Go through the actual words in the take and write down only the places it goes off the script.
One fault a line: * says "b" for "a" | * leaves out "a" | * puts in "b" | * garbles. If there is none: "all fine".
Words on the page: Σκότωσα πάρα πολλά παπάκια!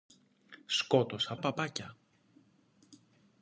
* leaves out "πάρα πολλά"